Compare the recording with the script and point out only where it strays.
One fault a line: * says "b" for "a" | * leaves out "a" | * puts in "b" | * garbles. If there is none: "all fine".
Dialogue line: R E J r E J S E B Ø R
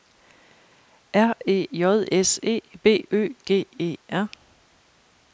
* leaves out "r E J"
* puts in "G E"